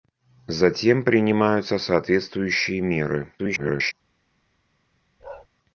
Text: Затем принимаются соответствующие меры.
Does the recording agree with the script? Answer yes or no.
no